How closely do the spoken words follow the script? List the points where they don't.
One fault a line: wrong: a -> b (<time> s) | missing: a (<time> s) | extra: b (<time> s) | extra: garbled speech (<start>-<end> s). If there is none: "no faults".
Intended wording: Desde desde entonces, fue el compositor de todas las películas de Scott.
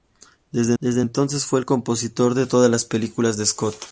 no faults